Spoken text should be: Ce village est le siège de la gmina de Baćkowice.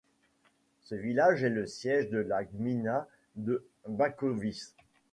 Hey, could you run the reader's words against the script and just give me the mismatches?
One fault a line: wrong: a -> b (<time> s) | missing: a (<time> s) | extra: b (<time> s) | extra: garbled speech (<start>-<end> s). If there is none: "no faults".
no faults